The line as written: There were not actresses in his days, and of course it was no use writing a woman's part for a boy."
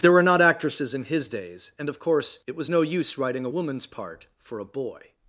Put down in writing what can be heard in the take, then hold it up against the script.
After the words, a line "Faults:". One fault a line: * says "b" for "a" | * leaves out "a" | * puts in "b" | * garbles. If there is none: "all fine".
There were not actresses in his days, and of course it was no use writing a woman's part for a boy."
Faults:
all fine